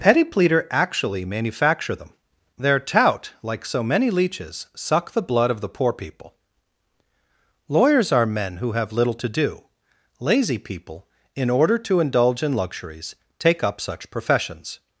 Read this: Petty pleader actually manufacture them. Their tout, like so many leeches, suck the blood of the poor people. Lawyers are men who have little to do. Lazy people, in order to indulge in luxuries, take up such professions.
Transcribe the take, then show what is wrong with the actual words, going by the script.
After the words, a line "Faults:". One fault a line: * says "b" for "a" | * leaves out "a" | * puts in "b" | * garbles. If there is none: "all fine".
Petty pleader actually manufacture them. Their tout, like so many leeches, suck the blood of the poor people. Lawyers are men who have little to do. Lazy people, in order to indulge in luxuries, take up such professions.
Faults:
all fine